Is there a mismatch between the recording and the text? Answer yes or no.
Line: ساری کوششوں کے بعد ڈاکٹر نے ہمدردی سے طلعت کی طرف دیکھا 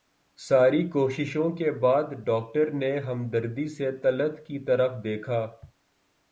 no